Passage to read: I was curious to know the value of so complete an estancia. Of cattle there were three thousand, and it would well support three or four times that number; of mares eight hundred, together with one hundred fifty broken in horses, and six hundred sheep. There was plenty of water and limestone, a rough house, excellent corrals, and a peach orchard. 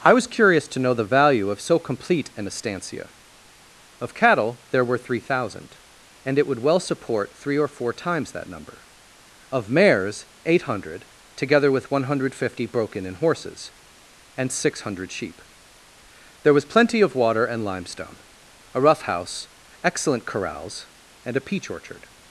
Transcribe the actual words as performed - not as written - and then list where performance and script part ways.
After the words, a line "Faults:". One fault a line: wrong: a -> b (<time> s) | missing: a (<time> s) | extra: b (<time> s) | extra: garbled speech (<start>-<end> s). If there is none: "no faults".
I was curious to know the value of so complete an estancia. Of cattle there were three thousand, and it would well support three or four times that number; of mares eight hundred, together with one hundred fifty broken in horses, and six hundred sheep. There was plenty of water and limestone, a rough house, excellent corrals, and a peach orchard.
Faults:
no faults